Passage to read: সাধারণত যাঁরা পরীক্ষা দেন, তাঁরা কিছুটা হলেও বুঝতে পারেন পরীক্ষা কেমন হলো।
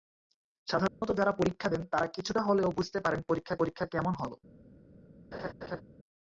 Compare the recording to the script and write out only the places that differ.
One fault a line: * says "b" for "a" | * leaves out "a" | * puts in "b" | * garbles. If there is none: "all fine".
* puts in "পরীক্ষা"